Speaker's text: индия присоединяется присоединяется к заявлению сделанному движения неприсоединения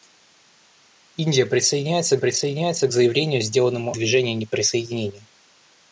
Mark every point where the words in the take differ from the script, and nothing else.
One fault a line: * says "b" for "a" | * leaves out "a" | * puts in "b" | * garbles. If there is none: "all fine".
all fine